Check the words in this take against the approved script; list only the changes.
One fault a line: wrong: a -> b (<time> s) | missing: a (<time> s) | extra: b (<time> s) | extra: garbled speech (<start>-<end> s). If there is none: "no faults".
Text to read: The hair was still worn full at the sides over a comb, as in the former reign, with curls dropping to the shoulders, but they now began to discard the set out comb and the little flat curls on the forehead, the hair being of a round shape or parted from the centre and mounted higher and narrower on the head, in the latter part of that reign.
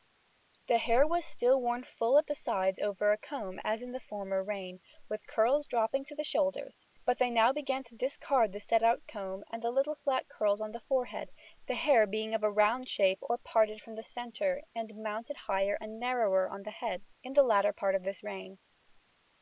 wrong: that -> this (18.0 s)